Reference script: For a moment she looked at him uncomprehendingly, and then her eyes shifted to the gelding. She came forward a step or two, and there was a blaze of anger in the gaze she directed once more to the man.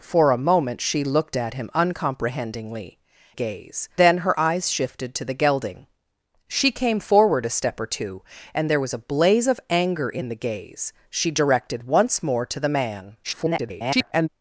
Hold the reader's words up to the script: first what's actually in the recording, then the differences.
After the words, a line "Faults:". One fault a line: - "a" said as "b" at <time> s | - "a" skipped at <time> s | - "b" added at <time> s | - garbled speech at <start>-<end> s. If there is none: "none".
For a moment she looked at him uncomprehendingly, gaze then her eyes shifted to the gelding. She came forward a step or two, and there was a blaze of anger in the gaze she directed once more to the man. [garbled]
Faults:
- "and" said as "gaze" at 3.3 s
- garbled speech at 13.2-14.3 s